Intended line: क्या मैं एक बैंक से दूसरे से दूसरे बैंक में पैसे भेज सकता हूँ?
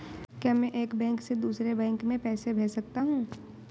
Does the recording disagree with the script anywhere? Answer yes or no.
yes